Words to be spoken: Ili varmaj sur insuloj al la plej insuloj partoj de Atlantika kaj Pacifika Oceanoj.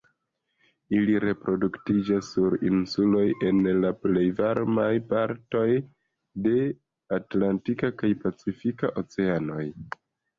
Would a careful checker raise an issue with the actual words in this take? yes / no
yes